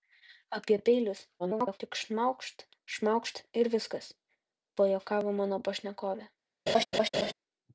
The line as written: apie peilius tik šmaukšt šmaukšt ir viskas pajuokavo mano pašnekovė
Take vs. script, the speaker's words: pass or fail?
fail